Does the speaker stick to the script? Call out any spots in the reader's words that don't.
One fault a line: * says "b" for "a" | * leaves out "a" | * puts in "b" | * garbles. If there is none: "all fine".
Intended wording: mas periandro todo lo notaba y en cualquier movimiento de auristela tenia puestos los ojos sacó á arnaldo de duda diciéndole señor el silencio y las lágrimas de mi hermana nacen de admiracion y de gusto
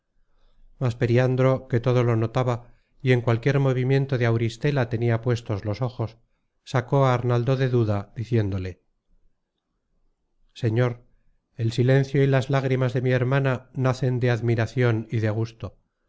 * puts in "que"